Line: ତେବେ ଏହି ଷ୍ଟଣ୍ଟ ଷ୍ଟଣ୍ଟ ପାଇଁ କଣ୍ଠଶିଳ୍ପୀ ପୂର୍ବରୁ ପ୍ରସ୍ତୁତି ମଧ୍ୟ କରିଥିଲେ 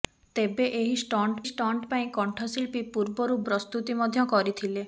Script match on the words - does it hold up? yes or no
yes